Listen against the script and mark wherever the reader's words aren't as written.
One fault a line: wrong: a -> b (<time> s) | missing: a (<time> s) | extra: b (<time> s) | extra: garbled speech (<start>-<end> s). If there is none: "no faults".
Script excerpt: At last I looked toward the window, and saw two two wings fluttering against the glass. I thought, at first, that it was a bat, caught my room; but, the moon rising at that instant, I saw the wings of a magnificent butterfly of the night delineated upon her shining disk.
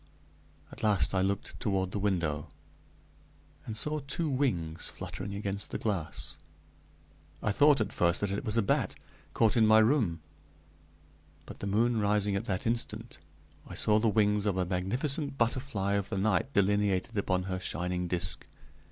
missing: two (4.3 s)
extra: in (9.6 s)